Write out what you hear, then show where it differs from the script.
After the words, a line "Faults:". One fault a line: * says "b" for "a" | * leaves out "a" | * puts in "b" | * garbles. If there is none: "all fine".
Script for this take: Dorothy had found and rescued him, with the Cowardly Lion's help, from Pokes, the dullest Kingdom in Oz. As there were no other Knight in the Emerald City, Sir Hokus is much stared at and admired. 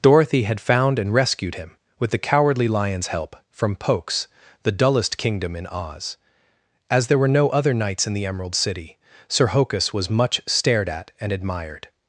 Dorothy had found and rescued him, with the Cowardly Lion's help, from Pokes, the dullest Kingdom in Oz. As there were no other Knights in the Emerald City, Sir Hokus was much stared at and admired.
Faults:
* says "Knights" for "Knight"
* says "was" for "is"